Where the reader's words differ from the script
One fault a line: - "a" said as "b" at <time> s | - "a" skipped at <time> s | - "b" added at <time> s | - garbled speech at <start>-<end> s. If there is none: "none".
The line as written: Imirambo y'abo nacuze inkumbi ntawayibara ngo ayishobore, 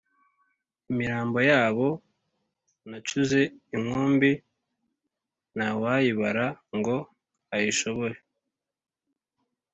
none